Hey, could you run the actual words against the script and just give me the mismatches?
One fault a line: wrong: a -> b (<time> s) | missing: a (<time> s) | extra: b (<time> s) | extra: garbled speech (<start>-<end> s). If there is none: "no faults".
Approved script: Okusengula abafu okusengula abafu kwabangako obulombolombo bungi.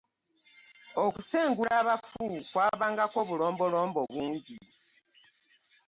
missing: okusengula abafu (2.2 s)